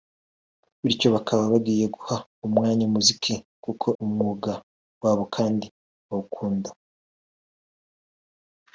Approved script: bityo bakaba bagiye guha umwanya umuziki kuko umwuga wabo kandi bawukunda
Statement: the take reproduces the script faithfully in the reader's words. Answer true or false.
true